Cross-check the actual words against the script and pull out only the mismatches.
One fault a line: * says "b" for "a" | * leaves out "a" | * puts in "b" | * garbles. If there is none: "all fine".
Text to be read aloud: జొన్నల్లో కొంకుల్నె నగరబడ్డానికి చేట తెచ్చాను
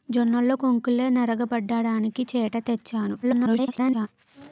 * garbles